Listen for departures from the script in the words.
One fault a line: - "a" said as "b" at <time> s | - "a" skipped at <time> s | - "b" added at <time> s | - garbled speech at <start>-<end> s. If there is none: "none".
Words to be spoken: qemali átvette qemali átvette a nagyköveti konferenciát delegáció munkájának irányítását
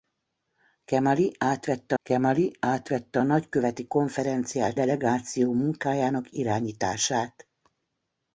none